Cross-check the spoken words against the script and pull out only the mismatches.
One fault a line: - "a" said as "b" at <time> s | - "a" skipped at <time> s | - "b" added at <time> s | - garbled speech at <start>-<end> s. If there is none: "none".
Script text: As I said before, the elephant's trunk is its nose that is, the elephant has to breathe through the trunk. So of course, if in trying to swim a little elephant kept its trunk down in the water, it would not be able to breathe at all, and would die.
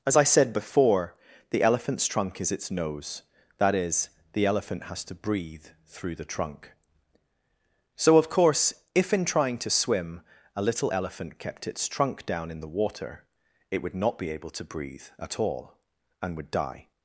none